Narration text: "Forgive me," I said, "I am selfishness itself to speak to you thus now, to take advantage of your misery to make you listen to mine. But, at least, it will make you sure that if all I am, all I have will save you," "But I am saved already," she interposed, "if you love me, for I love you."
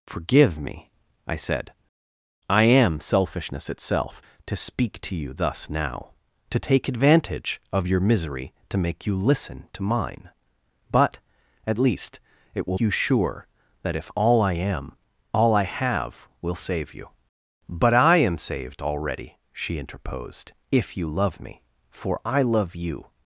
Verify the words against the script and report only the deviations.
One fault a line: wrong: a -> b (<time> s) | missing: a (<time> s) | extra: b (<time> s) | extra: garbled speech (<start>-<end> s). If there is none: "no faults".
missing: make (12.8 s)